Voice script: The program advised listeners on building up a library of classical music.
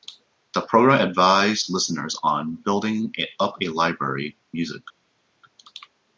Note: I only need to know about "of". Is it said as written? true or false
false